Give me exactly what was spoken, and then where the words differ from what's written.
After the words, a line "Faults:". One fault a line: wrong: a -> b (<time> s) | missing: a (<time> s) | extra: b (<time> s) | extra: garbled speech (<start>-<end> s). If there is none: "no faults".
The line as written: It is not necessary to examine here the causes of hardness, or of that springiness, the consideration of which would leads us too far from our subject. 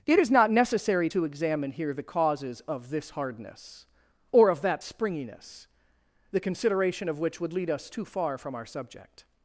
It is not necessary to examine here the causes of this hardness, or of that springiness, the consideration of which would lead us too far from our subject.
Faults:
extra: this (2.9 s)
wrong: leads -> lead (7.5 s)